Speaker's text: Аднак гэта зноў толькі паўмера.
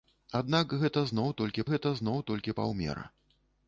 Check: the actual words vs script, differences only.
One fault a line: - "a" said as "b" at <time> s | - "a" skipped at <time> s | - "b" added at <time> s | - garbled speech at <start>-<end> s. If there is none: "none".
- "гэта зноў толькі" added at 1.7 s